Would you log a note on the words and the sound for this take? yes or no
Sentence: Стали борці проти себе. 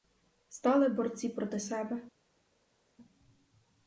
no